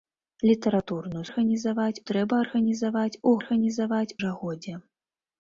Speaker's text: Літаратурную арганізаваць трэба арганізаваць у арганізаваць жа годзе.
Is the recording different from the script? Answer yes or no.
no